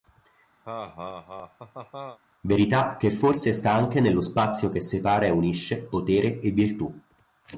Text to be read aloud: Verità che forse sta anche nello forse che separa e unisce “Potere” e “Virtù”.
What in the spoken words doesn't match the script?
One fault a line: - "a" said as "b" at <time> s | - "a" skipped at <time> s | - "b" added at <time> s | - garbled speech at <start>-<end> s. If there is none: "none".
- "forse" said as "spazio" at 4.2 s